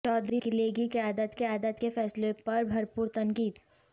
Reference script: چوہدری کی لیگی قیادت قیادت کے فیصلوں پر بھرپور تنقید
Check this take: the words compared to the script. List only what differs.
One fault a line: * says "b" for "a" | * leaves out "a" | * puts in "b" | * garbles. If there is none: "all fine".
all fine